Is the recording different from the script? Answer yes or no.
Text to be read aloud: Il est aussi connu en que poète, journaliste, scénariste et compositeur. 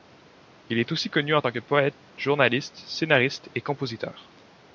yes